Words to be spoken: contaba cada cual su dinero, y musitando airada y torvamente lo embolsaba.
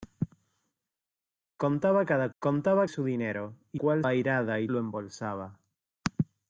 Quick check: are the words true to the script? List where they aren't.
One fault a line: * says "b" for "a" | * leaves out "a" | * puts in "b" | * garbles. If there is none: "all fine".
* says "contaba" for "cual"
* says "cual" for "musitando"
* leaves out "torvamente"